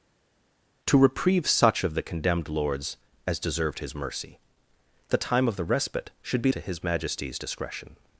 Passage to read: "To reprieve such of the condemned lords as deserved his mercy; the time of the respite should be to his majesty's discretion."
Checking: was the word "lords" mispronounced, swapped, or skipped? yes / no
no